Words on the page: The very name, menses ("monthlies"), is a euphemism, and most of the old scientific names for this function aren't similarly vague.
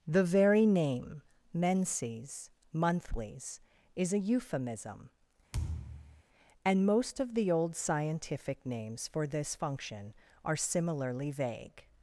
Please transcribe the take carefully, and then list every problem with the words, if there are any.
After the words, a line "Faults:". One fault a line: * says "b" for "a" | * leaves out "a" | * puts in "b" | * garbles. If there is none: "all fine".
The very name, menses ("monthlies"), is a euphemism, and most of the old scientific names for this function are similarly vague.
Faults:
* says "are" for "aren't"